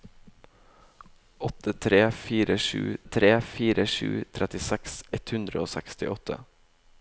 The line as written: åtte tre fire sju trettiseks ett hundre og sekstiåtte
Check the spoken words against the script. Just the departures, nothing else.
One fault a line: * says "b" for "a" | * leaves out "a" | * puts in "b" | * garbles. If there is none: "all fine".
* puts in "tre fire sju"